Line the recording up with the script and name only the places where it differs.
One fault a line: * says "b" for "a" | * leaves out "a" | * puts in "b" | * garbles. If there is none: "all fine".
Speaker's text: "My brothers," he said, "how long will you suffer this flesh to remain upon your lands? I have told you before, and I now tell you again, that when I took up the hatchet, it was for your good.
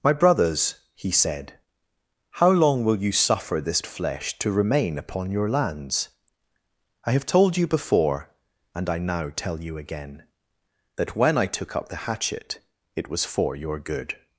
all fine